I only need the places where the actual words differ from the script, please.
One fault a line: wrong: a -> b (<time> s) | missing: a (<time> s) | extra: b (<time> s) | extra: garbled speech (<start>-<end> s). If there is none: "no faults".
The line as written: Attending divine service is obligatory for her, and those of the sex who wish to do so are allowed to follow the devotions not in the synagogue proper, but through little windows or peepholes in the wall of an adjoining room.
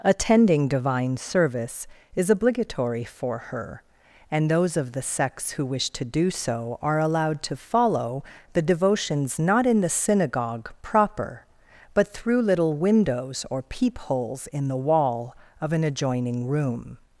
no faults